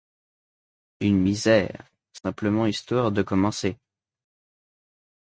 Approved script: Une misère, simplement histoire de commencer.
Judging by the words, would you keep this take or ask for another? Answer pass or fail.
pass